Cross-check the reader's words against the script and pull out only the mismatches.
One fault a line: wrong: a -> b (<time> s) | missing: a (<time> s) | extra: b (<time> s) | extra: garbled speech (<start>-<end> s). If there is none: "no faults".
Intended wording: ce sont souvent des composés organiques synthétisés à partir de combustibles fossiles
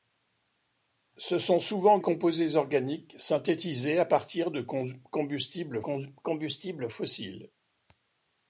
missing: des (2.0 s)
extra: combustibles (5.8 s)